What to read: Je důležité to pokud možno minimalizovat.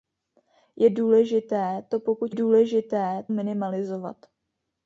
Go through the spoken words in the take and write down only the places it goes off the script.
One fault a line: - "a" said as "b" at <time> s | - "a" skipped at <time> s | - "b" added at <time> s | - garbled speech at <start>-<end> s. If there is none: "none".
- "možno" said as "důležité" at 2.3 s